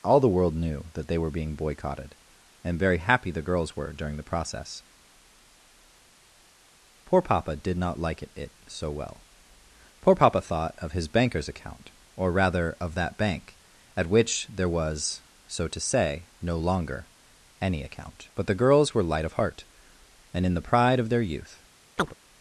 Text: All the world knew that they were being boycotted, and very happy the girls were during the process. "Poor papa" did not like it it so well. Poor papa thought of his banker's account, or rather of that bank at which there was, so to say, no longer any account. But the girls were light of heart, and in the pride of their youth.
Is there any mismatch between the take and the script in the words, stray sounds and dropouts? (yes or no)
yes